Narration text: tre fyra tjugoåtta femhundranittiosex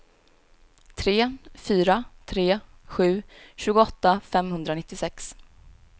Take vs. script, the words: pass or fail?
fail